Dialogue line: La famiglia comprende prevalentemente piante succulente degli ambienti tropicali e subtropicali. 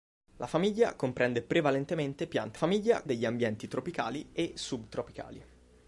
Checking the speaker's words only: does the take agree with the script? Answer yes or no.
no